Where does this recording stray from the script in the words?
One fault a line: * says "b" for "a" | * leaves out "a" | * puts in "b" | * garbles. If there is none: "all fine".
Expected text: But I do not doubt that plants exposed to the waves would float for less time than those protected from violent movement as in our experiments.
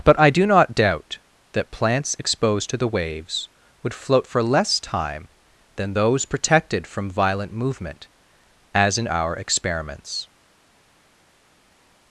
all fine